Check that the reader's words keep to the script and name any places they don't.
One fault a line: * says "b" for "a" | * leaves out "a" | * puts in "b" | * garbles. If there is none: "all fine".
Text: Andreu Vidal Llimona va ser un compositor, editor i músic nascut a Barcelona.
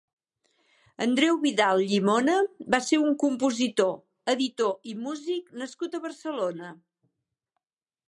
all fine